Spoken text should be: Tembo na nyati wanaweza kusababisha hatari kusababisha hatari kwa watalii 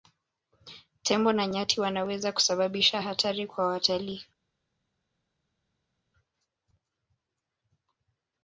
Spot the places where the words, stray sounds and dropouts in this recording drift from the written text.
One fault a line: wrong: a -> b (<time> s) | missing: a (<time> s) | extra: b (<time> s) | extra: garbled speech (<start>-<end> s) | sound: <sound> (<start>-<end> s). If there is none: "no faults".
missing: kusababisha hatari (3.5 s)